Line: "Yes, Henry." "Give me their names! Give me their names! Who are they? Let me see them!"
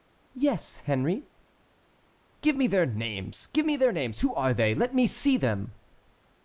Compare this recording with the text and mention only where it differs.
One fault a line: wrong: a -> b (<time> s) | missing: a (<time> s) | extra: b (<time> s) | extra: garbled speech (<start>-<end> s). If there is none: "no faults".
no faults